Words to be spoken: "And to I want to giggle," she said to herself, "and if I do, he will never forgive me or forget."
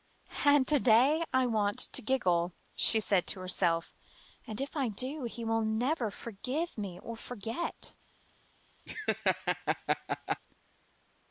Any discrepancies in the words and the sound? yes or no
yes